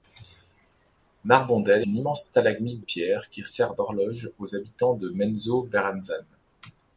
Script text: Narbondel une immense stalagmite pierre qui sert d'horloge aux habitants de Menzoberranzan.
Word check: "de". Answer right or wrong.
right